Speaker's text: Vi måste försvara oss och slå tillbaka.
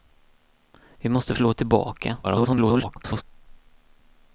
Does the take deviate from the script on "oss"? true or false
true